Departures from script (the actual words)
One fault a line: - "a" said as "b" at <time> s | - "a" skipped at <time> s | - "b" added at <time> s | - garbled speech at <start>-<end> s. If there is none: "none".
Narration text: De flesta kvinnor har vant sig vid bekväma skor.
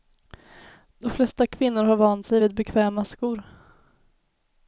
none